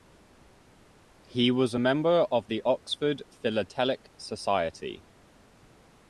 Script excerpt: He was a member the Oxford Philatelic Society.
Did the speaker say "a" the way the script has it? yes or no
yes